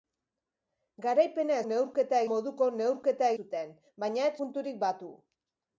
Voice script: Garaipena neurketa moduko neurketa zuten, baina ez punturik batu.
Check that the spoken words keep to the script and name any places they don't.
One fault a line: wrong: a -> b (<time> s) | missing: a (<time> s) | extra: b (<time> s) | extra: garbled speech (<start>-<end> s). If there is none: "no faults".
no faults